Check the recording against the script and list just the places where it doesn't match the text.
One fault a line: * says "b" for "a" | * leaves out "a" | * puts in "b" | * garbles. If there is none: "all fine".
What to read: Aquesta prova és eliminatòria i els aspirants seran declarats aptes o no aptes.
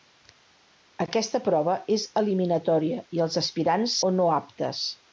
* leaves out "seran declarats aptes"